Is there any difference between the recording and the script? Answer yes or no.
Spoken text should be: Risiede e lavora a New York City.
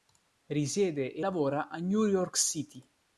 no